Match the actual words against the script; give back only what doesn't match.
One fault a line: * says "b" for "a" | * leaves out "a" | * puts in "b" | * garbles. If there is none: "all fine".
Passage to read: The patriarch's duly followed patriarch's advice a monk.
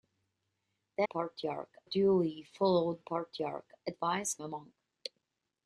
all fine